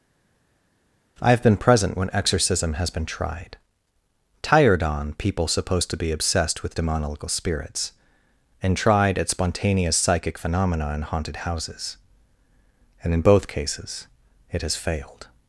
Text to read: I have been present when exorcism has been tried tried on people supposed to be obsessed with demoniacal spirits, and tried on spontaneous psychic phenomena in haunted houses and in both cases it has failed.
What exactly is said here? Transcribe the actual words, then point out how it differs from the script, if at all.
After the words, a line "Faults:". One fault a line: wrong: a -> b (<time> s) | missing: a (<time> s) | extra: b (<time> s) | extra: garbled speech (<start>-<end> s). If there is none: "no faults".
I have been present when exorcism has been tried tired on people supposed to be obsessed with demoniacal spirits, and tried at spontaneous psychic phenomena in haunted houses and in both cases it has failed.
Faults:
wrong: tried -> tired (4.5 s)
wrong: on -> at (9.2 s)